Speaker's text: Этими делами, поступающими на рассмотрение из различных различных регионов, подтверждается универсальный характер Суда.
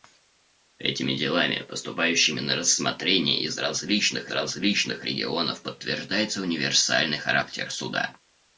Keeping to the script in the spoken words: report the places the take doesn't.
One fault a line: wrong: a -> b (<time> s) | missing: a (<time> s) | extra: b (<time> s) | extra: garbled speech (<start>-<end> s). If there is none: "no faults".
no faults